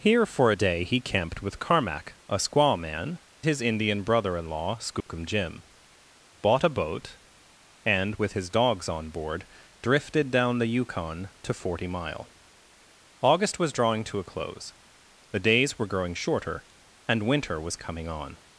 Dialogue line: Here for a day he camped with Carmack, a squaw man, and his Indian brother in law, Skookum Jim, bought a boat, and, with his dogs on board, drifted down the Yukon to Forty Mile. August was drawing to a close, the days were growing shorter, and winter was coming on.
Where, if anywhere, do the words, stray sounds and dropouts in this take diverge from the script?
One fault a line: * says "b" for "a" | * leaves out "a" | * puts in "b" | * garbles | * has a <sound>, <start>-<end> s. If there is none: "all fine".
* leaves out "and"
* has a dropout, 5.0-5.1 s